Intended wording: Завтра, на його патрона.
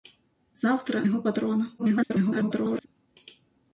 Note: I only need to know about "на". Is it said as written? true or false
false